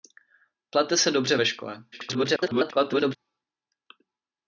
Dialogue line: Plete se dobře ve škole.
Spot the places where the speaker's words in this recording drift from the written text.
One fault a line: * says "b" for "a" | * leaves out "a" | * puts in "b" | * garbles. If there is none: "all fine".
* garbles